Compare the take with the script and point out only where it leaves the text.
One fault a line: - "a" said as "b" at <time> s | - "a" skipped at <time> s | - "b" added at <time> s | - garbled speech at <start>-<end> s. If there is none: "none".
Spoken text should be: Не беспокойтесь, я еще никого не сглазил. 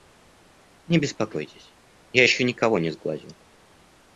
none